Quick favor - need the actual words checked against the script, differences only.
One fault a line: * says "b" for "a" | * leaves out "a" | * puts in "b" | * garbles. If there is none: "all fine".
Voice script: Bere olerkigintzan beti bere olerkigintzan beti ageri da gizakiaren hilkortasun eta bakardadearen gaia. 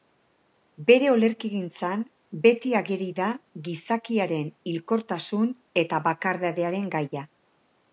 * leaves out "bere olerkigintzan beti"